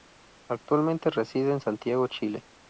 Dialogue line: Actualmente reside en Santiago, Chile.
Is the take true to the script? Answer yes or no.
yes